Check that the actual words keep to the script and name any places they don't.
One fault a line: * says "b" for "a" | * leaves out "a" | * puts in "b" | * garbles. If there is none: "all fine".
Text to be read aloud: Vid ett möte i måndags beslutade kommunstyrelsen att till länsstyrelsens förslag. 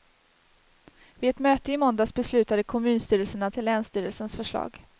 all fine